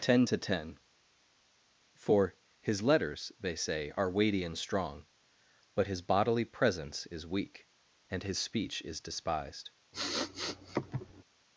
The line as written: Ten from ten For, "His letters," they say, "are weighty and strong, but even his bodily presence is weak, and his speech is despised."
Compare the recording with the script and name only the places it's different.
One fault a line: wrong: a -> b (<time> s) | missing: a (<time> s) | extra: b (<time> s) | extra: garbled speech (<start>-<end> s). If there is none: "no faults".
wrong: from -> to (0.2 s)
missing: even (5.9 s)